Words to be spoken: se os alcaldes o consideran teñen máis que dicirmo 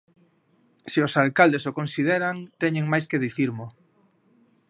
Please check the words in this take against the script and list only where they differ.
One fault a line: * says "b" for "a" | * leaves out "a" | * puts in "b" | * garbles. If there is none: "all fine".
all fine